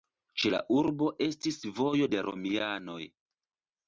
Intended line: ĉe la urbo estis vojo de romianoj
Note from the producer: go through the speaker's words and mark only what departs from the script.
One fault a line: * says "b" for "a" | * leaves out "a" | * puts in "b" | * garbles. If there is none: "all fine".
all fine